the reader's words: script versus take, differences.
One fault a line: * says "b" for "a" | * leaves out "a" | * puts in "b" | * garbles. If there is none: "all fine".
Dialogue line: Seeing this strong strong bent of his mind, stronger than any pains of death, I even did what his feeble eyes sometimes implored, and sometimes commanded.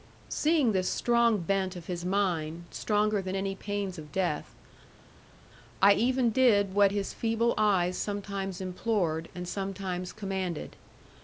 * leaves out "strong"